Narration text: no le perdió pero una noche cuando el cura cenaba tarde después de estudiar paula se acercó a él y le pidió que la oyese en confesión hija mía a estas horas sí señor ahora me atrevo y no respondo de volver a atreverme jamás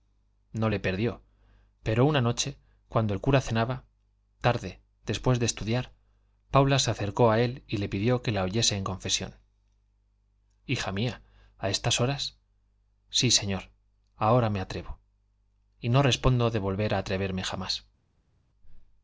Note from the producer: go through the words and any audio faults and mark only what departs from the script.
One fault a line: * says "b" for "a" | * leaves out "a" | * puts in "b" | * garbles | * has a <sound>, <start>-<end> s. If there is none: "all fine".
all fine